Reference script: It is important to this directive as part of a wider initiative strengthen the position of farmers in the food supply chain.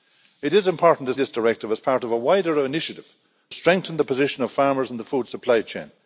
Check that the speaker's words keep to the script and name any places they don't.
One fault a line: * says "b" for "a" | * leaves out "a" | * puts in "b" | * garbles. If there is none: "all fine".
all fine